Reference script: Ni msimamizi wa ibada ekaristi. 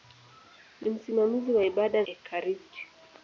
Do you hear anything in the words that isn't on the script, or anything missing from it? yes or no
no